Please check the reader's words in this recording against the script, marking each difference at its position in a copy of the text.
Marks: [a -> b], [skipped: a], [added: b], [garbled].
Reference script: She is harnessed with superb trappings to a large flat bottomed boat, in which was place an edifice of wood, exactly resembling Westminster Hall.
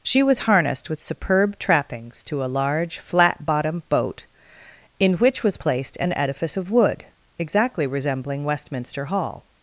She [is -> was] harnessed with superb trappings to a large flat bottomed boat, in which was [place -> placed] an edifice of wood, exactly resembling Westminster Hall.